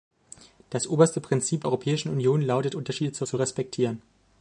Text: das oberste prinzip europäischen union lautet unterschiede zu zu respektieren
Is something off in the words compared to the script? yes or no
no